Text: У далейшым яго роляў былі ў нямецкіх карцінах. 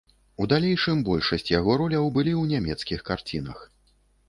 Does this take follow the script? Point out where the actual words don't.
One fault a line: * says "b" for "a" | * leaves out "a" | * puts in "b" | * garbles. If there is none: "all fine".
* puts in "большасць"